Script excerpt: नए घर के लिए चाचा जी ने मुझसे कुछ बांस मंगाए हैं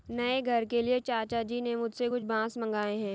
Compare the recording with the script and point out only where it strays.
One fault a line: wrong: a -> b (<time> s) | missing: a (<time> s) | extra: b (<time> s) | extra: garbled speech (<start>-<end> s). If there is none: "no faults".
no faults